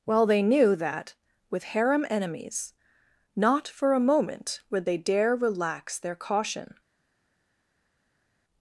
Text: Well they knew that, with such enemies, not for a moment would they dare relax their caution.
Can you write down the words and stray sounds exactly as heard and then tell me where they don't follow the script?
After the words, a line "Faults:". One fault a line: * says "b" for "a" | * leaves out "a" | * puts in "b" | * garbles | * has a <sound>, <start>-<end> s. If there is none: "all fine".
Well they knew that, with harem enemies, not for a moment would they dare relax their caution.
Faults:
* says "harem" for "such"